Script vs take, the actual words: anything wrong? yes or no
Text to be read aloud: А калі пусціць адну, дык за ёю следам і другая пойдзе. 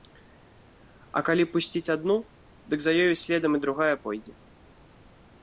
no